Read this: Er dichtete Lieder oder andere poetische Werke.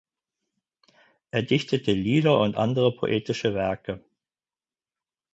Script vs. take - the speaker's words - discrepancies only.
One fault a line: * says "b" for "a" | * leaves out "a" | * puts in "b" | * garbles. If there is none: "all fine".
* says "und" for "oder"